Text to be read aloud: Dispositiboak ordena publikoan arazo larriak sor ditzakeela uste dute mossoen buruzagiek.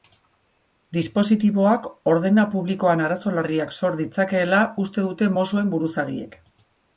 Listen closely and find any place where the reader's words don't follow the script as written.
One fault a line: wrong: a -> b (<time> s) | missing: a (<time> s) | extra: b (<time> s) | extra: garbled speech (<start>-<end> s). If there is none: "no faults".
no faults